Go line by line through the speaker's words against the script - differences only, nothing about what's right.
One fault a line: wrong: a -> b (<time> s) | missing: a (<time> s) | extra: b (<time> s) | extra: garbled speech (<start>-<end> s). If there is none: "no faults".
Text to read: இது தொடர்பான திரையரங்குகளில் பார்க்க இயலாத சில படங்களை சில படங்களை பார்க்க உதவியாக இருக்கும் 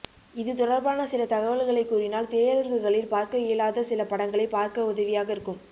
extra: சில தகவல்களை கூறினால் (1.1 s)
missing: சில படங்களை (4.5 s)